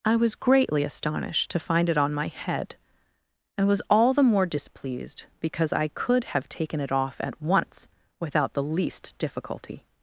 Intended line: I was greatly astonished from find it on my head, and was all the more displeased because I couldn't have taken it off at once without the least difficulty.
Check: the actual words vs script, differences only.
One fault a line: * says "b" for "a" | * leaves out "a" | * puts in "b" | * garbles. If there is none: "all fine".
* says "to" for "from"
* says "could" for "couldn't"